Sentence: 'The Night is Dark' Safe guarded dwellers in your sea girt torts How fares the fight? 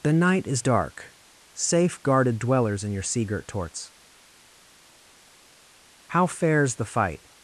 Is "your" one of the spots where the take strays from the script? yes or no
no